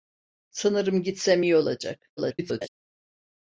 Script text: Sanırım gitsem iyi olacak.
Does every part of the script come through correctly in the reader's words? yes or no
no